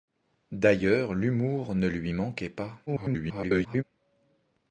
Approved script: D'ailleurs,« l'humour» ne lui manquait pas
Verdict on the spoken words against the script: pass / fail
fail